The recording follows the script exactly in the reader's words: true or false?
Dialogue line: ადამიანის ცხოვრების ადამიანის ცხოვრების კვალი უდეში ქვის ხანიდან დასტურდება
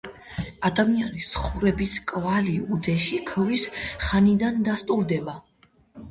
false